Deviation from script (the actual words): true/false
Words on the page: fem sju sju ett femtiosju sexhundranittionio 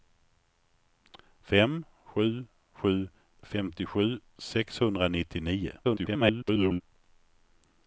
true